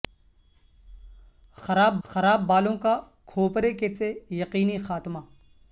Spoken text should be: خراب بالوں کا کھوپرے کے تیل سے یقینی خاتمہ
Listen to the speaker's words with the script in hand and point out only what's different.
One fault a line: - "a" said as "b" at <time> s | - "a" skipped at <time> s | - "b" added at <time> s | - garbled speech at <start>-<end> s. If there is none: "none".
- "خراب" added at 2.0 s
- "تیل" skipped at 3.9 s